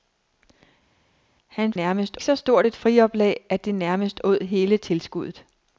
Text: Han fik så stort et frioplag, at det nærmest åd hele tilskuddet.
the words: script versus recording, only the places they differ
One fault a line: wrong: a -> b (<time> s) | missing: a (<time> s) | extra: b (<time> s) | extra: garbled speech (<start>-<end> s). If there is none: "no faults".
wrong: fik -> nærmest (1.7 s)